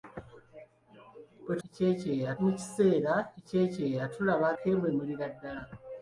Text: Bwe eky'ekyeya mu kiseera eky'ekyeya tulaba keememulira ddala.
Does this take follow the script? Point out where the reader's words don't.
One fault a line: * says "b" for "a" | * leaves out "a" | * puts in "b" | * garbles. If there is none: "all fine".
all fine